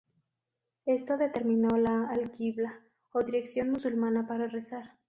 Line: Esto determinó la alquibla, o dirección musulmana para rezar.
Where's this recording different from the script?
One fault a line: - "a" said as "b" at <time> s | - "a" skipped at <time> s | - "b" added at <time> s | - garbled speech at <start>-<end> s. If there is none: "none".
none